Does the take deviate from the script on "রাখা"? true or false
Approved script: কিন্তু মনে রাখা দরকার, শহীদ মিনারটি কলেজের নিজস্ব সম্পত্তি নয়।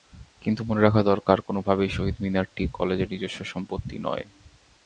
false